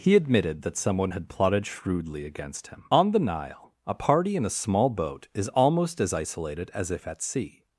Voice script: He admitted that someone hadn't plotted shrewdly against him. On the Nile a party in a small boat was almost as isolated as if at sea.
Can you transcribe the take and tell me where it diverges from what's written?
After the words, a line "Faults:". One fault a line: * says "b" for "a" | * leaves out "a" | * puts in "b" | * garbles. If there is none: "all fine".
He admitted that someone had plotted shrewdly against him. On the Nile a party in a small boat is almost as isolated as if at sea.
Faults:
* says "had" for "hadn't"
* says "is" for "was"